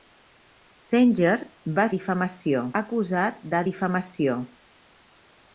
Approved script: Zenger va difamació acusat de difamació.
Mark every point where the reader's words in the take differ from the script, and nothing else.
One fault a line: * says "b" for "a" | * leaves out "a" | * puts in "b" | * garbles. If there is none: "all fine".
all fine